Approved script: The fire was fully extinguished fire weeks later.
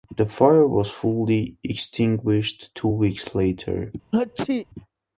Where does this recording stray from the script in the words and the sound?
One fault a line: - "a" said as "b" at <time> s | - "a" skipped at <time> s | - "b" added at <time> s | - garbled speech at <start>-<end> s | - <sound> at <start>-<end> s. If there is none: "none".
- "fire" said as "two" at 2.7 s
- sneeze at 4.1-4.7 s